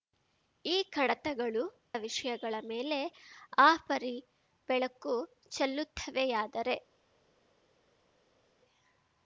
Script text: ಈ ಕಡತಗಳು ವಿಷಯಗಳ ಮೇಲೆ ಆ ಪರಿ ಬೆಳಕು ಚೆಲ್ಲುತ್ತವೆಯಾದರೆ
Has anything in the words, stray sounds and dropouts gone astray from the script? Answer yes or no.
no